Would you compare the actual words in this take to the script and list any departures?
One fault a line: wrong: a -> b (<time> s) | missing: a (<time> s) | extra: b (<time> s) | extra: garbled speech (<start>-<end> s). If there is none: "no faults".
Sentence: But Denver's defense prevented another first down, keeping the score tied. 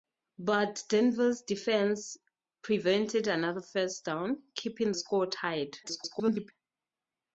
missing: the (4.9 s)
extra: garbled speech (5.8-6.5 s)